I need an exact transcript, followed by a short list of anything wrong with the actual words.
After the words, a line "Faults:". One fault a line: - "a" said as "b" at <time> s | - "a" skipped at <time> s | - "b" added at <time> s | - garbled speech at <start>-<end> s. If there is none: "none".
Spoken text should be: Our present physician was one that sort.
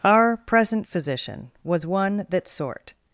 Our present physician was one that sort.
Faults:
none